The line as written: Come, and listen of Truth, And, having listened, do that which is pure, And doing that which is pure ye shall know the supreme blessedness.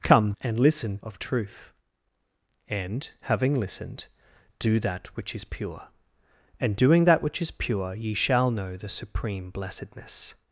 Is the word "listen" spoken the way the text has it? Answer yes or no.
yes